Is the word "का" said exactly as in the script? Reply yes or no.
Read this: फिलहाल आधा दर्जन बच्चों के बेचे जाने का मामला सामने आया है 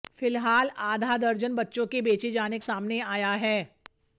no